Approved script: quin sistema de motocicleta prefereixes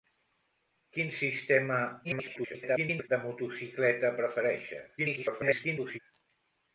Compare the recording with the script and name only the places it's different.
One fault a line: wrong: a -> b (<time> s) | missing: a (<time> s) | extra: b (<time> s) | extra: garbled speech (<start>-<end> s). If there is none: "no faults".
extra: garbled speech (2.0-3.1 s)
extra: garbled speech (5.0-6.0 s)